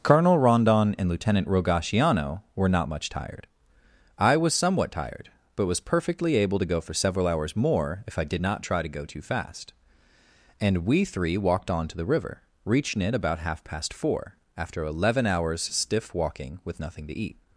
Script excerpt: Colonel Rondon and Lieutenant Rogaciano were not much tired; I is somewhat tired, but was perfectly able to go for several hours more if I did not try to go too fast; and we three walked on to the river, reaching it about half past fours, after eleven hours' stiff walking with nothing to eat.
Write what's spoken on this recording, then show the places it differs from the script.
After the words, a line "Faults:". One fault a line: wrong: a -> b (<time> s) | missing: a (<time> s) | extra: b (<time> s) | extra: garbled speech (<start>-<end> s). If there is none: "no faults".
Colonel Rondon and Lieutenant Rogaciano were not much tired; I was somewhat tired, but was perfectly able to go for several hours more if I did not try to go too fast; and we three walked on to the river, reaching it about half past four, after eleven hours' stiff walking with nothing to eat.
Faults:
wrong: is -> was (4.3 s)
wrong: fours -> four (13.9 s)